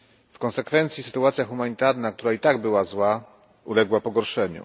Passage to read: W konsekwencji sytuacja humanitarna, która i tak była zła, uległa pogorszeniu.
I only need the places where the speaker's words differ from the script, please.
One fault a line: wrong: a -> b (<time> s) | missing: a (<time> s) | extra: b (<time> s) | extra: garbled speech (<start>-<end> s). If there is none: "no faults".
no faults